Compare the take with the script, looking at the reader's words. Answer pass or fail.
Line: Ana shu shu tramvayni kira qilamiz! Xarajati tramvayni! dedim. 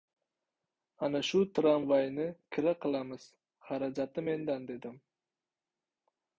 fail